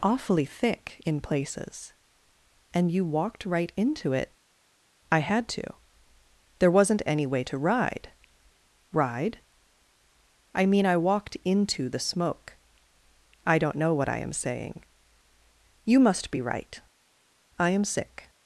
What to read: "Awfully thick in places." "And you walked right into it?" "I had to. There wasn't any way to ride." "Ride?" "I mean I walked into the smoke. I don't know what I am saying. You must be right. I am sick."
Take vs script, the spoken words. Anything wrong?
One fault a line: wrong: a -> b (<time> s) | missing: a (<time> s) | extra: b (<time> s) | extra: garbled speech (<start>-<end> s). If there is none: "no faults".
no faults